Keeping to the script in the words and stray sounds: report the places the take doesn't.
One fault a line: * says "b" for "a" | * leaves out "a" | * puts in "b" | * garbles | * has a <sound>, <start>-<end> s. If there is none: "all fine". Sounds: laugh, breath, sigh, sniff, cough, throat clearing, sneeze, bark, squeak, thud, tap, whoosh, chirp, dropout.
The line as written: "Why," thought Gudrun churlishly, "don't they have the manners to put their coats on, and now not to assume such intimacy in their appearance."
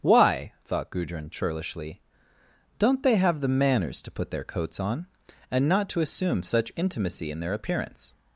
* leaves out "now"